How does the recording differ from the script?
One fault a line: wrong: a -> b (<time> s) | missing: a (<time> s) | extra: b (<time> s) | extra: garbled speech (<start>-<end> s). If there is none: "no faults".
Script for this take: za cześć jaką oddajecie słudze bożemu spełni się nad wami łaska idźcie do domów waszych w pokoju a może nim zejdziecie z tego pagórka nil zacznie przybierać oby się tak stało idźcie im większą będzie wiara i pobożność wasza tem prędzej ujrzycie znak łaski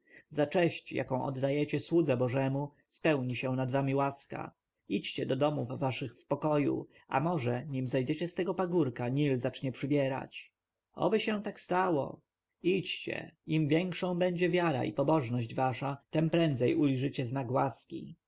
no faults